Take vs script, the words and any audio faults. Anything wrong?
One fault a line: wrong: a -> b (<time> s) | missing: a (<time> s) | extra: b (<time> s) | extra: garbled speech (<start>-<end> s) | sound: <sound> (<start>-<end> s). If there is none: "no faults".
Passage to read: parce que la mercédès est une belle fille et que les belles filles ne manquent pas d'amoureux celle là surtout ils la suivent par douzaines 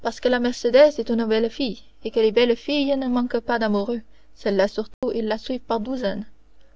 sound: dropout (4.9-5.0 s)